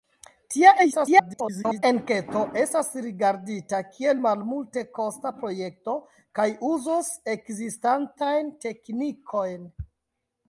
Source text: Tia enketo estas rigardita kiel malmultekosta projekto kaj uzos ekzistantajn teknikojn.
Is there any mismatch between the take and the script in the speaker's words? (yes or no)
yes